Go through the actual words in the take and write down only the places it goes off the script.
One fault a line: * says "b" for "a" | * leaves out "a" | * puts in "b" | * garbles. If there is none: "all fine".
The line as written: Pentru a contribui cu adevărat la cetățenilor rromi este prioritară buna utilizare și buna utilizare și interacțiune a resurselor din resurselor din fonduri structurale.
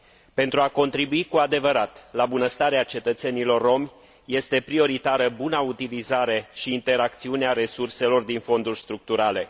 * puts in "bunăstarea"
* leaves out "buna utilizare și"
* leaves out "resurselor din"